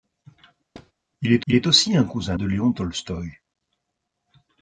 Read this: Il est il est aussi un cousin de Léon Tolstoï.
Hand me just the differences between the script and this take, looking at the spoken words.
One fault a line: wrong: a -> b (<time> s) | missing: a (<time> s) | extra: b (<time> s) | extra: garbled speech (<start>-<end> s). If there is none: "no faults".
no faults